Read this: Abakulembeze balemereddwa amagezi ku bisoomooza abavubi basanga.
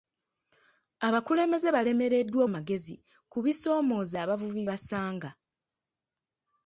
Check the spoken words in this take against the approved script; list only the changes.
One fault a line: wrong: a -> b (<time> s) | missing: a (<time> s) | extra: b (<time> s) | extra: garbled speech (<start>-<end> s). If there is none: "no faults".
no faults